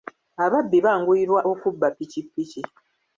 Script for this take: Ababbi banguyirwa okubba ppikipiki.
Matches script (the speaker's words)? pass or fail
pass